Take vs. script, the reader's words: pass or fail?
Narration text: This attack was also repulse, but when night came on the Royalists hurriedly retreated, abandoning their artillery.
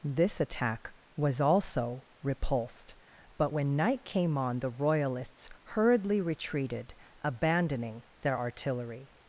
fail